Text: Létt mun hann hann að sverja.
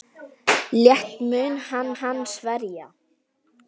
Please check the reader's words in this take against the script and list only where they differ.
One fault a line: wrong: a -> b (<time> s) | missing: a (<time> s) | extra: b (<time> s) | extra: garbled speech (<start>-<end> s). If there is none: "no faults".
no faults